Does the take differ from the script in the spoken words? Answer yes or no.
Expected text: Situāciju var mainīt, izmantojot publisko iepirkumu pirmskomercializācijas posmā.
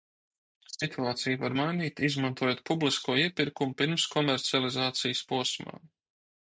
no